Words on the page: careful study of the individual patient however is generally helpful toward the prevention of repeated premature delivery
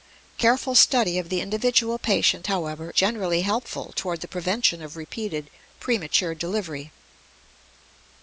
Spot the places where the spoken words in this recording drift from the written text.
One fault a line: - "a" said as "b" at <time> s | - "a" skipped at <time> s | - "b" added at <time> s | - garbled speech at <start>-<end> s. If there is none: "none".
- "is" skipped at 2.9 s